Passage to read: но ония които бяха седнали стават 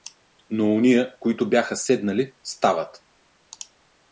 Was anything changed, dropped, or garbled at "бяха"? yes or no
no